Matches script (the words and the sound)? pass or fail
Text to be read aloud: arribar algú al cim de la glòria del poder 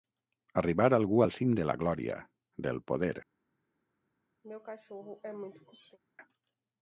fail